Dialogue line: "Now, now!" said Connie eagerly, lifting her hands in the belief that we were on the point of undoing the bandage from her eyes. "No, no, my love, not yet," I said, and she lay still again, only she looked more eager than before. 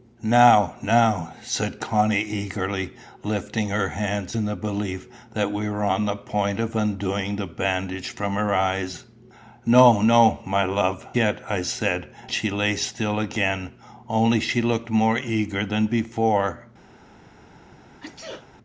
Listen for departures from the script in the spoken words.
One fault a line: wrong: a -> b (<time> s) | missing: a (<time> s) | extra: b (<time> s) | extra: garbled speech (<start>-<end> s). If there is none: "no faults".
missing: not (11.1 s)
missing: and (12.1 s)